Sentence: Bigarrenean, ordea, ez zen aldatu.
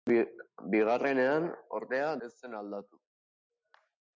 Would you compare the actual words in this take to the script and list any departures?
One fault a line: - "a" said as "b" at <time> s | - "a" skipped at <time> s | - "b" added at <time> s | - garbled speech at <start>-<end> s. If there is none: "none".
none